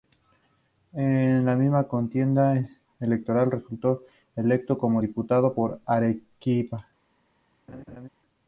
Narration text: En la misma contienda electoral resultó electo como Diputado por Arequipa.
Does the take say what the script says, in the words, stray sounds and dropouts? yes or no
no